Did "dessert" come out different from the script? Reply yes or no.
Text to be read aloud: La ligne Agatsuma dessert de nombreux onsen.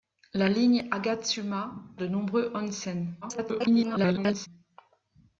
yes